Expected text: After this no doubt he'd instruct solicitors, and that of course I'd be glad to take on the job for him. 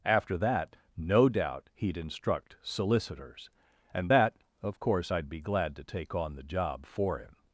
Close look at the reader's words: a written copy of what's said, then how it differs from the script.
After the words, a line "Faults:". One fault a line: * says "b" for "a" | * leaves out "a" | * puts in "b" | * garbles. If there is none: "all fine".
After that no doubt he'd instruct solicitors, and that of course I'd be glad to take on the job for him.
Faults:
* says "that" for "this"